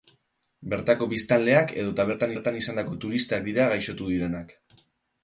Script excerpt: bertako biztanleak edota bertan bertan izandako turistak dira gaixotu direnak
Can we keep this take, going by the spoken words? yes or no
yes